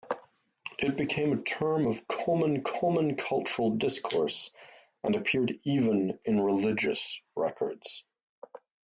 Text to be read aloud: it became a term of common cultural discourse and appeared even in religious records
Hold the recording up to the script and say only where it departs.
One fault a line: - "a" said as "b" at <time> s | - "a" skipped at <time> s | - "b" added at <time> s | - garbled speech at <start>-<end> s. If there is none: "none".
- "common" added at 2.6 s